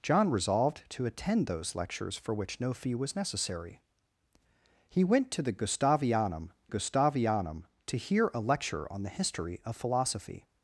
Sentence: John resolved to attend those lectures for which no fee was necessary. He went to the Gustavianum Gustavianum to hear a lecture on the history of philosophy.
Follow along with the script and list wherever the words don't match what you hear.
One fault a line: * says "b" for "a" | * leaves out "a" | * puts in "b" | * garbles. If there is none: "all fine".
all fine